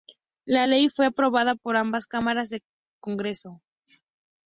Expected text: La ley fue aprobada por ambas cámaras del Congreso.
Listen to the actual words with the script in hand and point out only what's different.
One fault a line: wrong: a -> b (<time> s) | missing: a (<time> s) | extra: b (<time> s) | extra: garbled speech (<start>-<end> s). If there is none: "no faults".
no faults